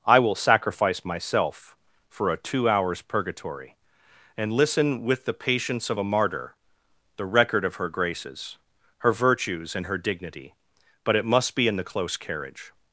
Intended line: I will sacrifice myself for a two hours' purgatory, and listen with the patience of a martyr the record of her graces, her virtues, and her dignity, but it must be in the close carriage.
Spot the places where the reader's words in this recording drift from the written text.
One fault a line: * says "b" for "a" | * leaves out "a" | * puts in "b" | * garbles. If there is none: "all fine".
all fine